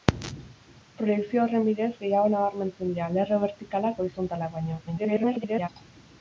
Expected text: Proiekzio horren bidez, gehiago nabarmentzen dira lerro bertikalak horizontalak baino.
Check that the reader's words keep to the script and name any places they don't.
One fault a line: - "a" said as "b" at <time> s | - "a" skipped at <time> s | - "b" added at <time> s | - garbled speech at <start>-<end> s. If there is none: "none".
- garbled speech at 4.9-5.7 s